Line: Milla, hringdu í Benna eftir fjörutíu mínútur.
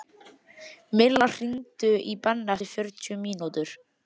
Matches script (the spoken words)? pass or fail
pass